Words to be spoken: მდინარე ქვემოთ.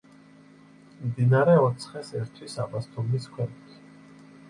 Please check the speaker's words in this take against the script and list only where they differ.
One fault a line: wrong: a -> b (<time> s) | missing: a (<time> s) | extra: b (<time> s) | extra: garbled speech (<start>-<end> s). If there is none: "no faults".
extra: ოცხეს ერთვის აბასთუმნის (1.7 s)